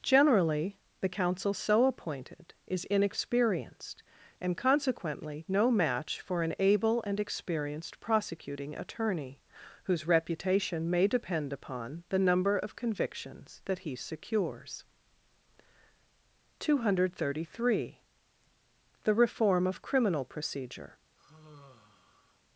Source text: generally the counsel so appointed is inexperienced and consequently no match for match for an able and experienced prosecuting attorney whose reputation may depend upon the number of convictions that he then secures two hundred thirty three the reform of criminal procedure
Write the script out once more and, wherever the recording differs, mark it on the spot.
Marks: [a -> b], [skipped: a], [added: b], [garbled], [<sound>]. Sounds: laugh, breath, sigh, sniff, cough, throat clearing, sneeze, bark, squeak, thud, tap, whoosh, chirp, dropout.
generally the counsel so appointed is inexperienced and consequently no match for [skipped: match for] an able and experienced prosecuting attorney whose reputation may depend upon the number of convictions that he [skipped: then] secures two hundred thirty three the reform of criminal procedure [sigh]